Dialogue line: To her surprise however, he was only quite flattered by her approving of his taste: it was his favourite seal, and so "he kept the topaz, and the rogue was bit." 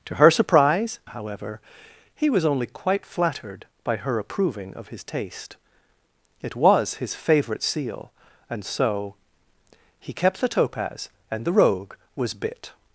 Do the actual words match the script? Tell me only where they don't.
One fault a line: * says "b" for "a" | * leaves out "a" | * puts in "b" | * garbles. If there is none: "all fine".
all fine